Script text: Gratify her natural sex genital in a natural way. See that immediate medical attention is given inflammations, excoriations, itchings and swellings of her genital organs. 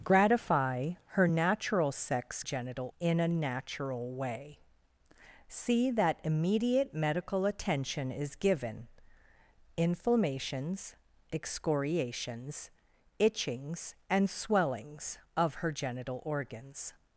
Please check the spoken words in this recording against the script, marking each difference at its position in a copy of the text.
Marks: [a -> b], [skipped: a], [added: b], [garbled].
Gratify her natural sex genital in a natural way. See that immediate medical attention is given inflammations, excoriations, itchings and swellings of her genital organs.